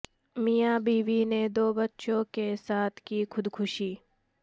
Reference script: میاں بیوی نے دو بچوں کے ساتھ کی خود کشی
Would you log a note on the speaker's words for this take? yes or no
no